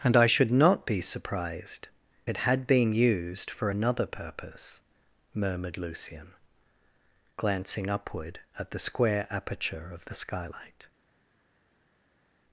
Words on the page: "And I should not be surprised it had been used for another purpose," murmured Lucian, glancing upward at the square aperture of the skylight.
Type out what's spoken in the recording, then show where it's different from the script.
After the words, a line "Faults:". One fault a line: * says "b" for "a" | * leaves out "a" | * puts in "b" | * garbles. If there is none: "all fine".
"And I should not be surprised it had been used for another purpose," murmured Lucian, glancing upward at the square aperture of the skylight.
Faults:
all fine